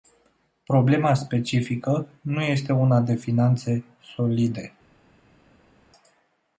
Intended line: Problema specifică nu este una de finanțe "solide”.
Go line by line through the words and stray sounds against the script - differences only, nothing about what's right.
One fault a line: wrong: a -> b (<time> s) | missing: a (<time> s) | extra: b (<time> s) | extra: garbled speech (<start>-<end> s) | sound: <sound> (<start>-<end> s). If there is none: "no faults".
no faults